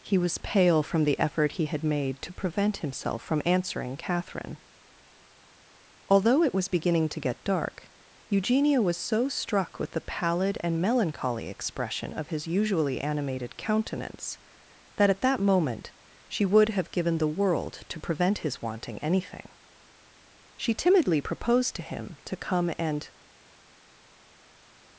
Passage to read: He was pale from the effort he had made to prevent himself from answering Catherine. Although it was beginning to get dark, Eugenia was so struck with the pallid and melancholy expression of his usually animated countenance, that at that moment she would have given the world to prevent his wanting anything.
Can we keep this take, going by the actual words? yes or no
no